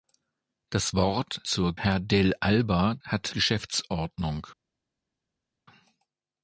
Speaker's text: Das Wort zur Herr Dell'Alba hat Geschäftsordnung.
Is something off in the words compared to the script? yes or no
no